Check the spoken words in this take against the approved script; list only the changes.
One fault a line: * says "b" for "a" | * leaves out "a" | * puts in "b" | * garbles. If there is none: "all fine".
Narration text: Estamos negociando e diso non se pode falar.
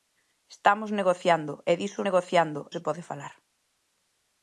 * says "negociando" for "non"